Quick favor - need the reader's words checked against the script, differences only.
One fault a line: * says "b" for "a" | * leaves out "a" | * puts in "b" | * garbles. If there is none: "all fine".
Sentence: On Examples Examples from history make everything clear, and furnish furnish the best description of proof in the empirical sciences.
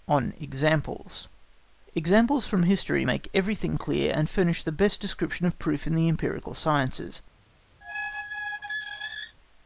* leaves out "furnish"